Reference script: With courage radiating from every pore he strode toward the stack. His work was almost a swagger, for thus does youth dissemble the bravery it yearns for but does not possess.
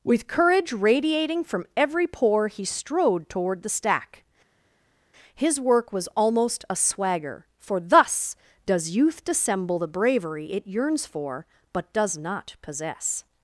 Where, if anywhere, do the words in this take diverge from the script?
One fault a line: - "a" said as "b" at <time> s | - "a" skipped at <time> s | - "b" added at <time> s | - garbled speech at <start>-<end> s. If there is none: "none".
none